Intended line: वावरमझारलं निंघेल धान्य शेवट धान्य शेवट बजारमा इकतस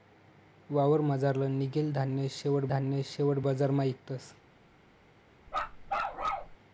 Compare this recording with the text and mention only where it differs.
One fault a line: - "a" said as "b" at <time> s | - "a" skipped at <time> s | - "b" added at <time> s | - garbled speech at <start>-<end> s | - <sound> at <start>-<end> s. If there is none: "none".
- bark at 5.5-6.6 s